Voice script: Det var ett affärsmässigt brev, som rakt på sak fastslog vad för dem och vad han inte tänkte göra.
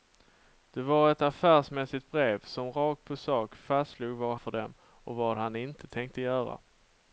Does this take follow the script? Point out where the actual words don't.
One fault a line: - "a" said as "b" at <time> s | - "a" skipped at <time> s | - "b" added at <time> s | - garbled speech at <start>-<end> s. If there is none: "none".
none